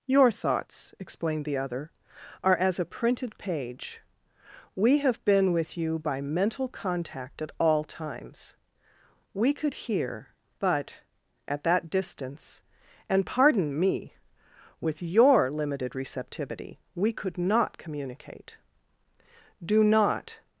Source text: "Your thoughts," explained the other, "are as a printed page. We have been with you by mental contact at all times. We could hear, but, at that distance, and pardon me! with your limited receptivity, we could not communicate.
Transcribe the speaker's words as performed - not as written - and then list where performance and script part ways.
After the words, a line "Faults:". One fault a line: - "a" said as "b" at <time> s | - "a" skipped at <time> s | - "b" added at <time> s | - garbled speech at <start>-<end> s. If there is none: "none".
"Your thoughts," explained the other, "are as a printed page. We have been with you by mental contact at all times. We could hear, but, at that distance, and pardon me! with your limited receptivity, we could not communicate. "Do not
Faults:
- "Do not" added at 19.6 s